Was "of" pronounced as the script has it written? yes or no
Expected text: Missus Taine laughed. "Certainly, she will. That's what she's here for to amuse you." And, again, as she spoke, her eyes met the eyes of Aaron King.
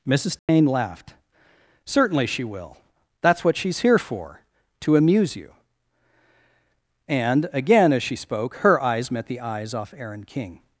no